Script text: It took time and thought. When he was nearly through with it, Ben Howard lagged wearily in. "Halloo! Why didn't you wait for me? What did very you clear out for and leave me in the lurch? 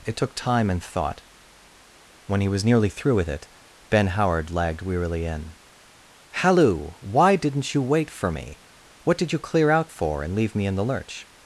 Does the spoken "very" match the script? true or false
false